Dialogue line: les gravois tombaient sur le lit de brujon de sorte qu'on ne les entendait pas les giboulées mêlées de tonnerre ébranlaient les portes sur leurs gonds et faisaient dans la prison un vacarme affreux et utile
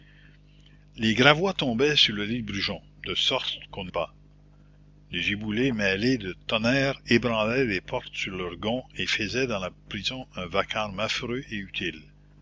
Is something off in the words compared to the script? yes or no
yes